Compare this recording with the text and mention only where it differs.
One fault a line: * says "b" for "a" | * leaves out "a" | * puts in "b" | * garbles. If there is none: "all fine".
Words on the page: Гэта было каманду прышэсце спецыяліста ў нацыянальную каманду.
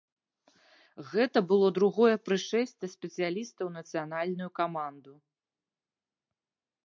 * says "другое" for "каманду"